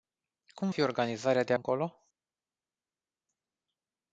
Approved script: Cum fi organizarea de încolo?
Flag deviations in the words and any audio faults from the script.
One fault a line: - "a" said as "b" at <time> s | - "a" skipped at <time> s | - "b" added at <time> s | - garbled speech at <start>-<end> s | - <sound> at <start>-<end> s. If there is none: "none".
none